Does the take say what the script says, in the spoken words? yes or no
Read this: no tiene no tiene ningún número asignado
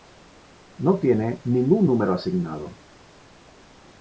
no